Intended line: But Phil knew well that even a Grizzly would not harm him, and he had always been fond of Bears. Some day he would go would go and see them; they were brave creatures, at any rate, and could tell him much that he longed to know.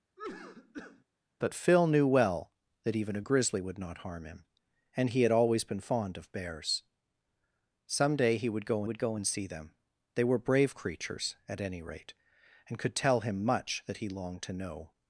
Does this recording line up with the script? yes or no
yes